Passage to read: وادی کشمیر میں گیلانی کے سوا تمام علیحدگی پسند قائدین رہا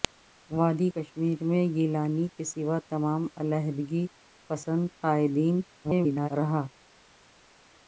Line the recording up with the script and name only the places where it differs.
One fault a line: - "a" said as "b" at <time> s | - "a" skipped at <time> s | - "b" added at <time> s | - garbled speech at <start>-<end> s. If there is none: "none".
- garbled speech at 5.8-6.3 s